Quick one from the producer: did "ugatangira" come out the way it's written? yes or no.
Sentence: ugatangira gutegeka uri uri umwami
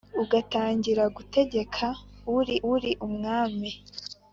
yes